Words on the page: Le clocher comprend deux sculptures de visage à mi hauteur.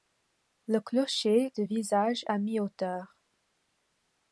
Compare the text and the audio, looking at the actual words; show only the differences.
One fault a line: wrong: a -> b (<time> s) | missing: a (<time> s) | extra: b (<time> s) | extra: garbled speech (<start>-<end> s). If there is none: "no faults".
missing: comprend deux sculptures (1.5 s)